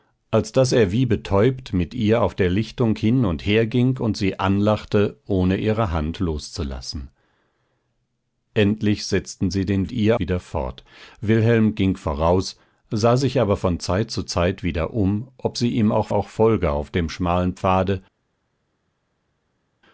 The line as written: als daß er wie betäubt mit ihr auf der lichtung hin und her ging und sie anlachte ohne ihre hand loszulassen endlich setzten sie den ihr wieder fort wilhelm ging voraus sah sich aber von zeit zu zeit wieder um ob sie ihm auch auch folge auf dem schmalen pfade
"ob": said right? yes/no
yes